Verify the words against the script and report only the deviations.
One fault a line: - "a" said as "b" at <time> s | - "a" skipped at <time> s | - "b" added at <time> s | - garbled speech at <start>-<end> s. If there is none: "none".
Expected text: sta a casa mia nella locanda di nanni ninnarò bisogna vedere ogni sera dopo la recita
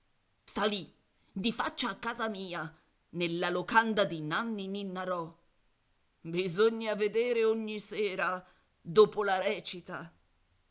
- "lì di faccia" added at 0.7 s